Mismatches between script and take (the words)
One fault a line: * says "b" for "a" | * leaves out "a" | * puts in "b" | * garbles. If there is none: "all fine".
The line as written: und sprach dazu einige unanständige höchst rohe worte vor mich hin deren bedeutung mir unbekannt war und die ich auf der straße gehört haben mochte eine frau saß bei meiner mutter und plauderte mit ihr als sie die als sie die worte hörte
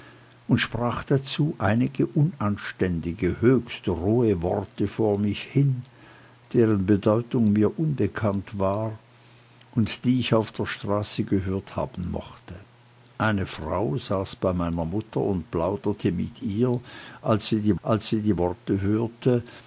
all fine